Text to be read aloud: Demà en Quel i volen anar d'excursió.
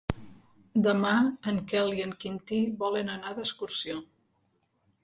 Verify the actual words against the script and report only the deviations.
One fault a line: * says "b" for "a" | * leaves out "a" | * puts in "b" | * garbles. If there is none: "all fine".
* puts in "en Quintí"